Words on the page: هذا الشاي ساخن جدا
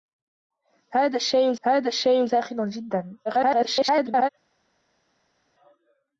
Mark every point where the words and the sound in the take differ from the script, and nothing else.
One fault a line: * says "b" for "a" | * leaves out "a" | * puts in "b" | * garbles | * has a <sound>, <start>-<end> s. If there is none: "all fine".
* puts in "هذا الشاي"
* garbles